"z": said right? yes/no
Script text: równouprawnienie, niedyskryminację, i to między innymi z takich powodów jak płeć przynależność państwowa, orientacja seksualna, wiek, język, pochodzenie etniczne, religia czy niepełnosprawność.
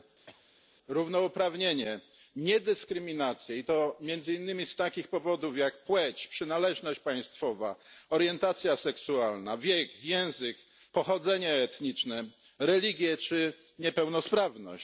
yes